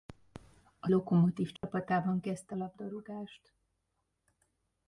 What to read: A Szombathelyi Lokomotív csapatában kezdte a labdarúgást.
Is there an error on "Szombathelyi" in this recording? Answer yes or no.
yes